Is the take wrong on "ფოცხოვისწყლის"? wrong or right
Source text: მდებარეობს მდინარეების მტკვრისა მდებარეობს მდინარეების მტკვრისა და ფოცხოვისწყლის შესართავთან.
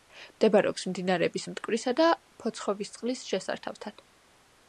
right